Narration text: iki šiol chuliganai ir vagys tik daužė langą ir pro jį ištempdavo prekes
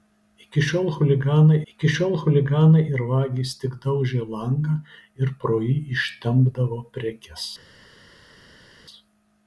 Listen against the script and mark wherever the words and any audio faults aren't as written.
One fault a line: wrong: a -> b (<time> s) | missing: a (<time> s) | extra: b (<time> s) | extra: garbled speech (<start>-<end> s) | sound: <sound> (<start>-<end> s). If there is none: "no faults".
extra: iki šiol chuliganai (1.7 s)